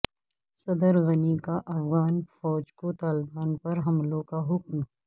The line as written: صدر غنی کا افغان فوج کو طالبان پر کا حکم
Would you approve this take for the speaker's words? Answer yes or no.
no